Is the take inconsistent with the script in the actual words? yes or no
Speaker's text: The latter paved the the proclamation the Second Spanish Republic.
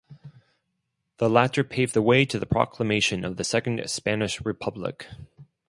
yes